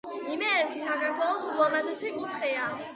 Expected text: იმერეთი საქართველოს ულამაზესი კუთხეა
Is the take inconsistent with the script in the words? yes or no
no